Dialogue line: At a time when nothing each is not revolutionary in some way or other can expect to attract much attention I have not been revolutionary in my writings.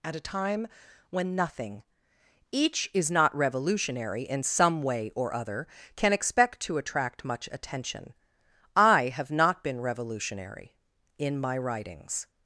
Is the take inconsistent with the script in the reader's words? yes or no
no